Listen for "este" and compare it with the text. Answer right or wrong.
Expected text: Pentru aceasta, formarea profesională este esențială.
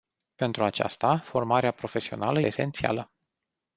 wrong